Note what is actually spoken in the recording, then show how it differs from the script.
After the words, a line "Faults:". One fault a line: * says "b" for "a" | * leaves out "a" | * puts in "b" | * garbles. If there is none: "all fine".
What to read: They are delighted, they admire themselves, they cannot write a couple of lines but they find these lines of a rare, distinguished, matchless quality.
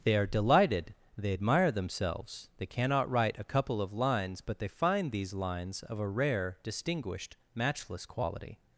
They are delighted, they admire themselves, they cannot write a couple of lines but they find these lines of a rare, distinguished, matchless quality.
Faults:
all fine